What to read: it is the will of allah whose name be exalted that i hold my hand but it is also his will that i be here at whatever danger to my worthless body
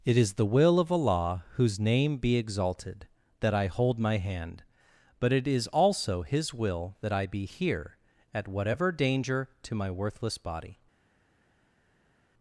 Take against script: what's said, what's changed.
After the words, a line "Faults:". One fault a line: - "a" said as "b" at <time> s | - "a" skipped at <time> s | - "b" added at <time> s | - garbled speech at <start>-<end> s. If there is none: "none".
it is the will of allah whose name be exalted that i hold my hand but it is also his will that i be here at whatever danger to my worthless body
Faults:
none